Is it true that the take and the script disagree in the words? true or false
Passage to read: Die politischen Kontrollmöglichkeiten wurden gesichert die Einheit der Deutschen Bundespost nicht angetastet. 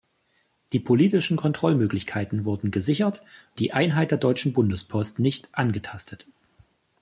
false